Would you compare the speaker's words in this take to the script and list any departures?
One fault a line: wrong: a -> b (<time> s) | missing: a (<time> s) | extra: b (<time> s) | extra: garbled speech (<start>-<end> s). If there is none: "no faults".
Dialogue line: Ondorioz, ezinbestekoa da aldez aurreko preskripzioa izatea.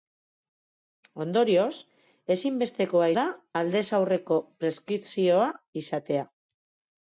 no faults